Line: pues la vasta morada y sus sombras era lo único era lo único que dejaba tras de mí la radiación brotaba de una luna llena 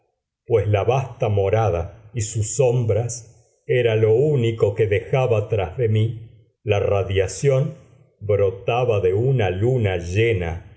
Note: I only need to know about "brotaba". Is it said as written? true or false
true